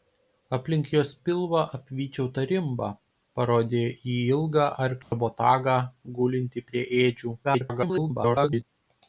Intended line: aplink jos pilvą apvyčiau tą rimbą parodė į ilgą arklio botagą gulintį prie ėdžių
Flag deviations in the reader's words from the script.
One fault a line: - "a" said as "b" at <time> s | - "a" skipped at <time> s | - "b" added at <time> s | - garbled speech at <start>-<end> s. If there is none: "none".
- garbled speech at 7.4-8.6 s